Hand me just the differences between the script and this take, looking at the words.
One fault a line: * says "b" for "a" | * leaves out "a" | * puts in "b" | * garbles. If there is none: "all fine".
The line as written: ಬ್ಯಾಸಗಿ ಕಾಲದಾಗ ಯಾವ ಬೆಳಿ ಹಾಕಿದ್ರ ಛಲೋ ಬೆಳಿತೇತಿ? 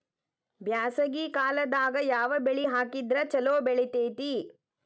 all fine